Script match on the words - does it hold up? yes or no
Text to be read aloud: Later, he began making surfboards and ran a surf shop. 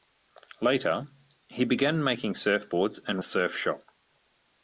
no